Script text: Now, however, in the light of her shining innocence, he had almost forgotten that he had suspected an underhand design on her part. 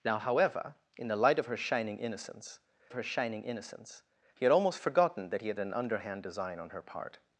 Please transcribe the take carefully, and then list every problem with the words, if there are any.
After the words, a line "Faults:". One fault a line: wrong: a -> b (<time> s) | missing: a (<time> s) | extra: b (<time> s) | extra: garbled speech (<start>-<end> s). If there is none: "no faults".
Now, however, in the light of her shining innocence her shining innocence, he had almost forgotten that he had an underhand design on her part.
Faults:
extra: her shining innocence (2.9 s)
missing: suspected (5.6 s)